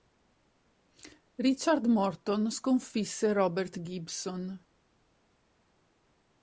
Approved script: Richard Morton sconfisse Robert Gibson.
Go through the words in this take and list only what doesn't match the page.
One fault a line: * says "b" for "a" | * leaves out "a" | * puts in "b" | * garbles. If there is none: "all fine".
all fine